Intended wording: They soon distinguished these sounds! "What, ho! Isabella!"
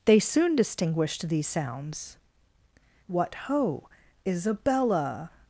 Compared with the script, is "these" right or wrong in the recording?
right